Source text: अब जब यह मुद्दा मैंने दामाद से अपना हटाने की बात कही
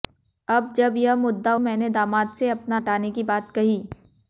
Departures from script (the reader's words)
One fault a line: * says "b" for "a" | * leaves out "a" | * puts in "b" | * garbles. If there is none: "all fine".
all fine